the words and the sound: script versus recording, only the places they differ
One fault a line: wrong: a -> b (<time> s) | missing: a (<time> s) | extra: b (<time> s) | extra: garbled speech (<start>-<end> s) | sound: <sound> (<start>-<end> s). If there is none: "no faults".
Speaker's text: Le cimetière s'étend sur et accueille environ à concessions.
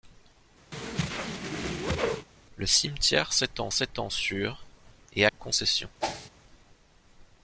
sound: whoosh (0.7-2.3 s)
extra: s'étend (3.7 s)
missing: accueille environ à (5.3 s)
sound: whoosh (6.0-6.3 s)